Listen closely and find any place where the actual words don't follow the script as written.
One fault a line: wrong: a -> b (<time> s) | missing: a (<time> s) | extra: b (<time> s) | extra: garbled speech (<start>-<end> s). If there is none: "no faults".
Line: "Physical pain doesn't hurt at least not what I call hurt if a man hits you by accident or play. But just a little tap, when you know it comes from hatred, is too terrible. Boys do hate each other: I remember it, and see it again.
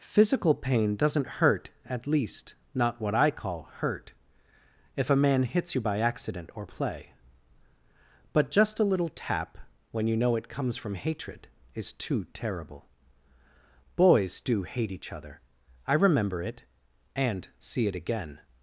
no faults